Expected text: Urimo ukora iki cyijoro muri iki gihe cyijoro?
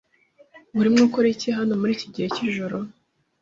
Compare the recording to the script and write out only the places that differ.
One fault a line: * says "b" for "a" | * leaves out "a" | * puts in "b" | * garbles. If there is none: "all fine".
* says "hano" for "cyijoro"